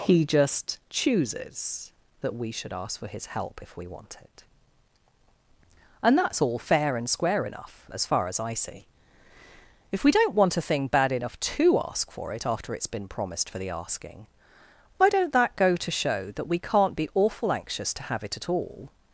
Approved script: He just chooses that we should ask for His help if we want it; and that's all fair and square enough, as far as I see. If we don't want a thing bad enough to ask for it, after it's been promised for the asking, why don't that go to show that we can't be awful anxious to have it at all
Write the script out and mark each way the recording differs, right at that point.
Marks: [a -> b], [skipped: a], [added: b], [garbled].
He just chooses that we should ask for His help if we want it; and that's all fair and square enough, as far as I see. If we don't want a thing bad enough to ask for it, after it's been promised for the asking, why don't that go to show that we can't be awful anxious to have it at all